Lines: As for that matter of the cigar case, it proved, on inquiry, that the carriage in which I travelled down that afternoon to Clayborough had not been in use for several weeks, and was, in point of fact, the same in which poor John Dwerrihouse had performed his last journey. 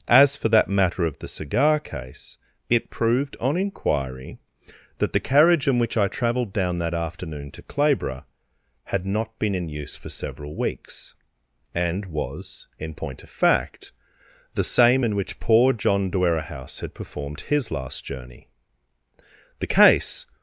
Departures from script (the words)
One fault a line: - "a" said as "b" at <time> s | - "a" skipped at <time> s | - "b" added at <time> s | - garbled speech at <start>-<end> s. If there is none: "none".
- "The case" added at 19.6 s